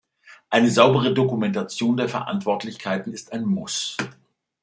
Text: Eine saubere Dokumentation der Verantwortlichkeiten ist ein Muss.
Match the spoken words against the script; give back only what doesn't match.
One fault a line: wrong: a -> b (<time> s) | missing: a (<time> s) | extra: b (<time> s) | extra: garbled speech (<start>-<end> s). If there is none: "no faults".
no faults